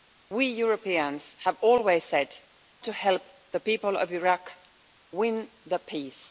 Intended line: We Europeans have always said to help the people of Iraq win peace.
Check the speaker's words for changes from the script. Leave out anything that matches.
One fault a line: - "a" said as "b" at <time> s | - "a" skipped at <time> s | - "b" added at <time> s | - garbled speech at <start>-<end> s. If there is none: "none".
none